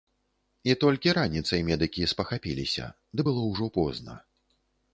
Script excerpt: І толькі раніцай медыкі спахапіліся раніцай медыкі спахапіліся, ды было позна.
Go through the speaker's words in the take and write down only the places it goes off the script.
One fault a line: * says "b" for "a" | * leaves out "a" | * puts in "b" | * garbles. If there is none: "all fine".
* leaves out "раніцай медыкі спахапіліся"
* puts in "ўжо"